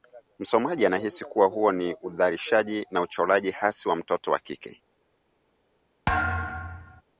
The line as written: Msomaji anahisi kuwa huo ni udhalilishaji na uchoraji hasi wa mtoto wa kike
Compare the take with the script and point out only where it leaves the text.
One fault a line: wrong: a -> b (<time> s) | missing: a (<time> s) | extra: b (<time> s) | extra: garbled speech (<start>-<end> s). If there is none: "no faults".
no faults